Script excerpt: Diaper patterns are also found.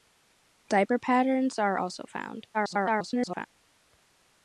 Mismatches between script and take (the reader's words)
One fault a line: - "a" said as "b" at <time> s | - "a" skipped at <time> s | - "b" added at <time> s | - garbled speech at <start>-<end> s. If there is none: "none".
- garbled speech at 2.5-3.5 s